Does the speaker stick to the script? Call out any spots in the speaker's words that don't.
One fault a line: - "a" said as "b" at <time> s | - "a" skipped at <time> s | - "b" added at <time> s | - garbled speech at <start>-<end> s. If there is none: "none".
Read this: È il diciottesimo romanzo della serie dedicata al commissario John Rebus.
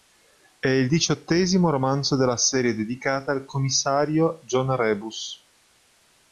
none